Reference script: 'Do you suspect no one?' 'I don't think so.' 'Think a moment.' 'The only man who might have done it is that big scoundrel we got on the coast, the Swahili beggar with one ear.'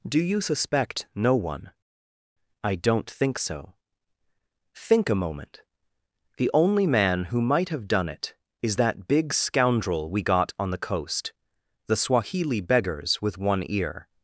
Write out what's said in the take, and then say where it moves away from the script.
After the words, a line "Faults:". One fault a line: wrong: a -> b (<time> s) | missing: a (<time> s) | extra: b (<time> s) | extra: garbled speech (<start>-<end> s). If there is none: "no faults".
'Do you suspect no one?' 'I don't think so.' 'Think a moment.' 'The only man who might have done it is that big scoundrel we got on the coast, the Swahili beggars with one ear.'
Faults:
wrong: beggar -> beggars (12.6 s)